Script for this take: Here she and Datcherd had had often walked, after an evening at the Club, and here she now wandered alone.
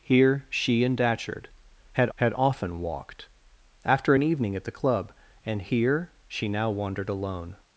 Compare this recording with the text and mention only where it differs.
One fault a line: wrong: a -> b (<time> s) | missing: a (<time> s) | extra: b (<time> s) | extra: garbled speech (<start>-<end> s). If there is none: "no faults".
no faults